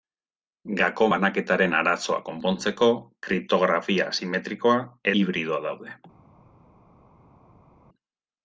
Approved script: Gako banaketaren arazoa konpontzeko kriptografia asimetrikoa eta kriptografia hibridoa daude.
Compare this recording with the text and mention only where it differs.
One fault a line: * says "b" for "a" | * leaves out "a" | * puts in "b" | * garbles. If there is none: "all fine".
* leaves out "eta kriptografia"